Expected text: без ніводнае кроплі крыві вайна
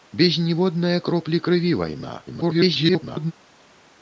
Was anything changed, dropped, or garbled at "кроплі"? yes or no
no